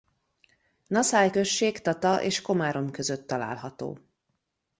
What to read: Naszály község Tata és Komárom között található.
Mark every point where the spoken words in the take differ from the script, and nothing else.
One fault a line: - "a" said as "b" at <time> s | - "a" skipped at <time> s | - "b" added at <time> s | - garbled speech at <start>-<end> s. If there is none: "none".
none